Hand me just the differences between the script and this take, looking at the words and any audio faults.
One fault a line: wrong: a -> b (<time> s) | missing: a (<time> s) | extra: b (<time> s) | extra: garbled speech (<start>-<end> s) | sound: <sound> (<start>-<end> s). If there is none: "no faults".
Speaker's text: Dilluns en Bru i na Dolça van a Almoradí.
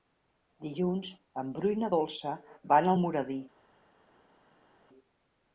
no faults